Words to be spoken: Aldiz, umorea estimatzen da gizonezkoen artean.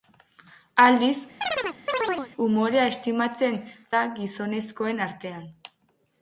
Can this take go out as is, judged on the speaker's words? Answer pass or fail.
pass